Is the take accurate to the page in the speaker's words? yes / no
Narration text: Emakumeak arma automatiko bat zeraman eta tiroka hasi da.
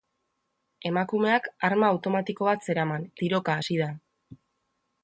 no